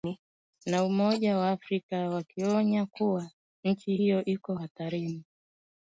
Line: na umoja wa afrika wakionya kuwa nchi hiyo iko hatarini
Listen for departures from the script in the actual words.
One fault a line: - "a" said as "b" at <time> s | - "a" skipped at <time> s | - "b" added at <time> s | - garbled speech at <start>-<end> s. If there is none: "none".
none